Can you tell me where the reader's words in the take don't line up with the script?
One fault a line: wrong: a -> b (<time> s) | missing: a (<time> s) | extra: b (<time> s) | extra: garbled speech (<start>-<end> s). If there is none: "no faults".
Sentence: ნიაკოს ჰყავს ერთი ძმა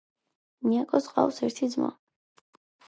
no faults